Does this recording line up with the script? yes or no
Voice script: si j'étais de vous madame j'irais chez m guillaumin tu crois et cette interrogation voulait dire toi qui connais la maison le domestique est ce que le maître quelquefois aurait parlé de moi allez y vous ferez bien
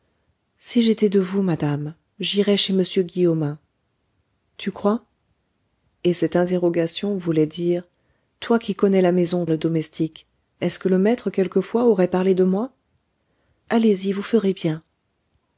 yes